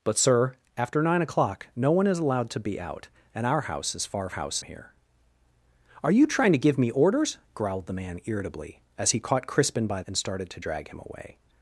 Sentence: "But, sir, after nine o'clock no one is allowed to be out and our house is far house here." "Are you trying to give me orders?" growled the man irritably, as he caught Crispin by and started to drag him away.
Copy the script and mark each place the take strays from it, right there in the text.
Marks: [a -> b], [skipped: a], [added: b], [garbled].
"But, sir, after nine o'clock no one is allowed to be out and our house is far house here." "Are you trying to give me orders?" growled the man irritably, as he caught Crispin by and started to drag him away.